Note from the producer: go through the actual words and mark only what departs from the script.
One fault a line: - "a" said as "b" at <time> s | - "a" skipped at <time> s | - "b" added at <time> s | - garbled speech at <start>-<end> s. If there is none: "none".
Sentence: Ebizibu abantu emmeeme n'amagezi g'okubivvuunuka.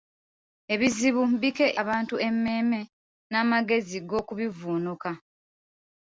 none